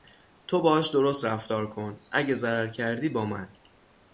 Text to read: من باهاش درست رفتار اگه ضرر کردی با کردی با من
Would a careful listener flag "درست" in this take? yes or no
no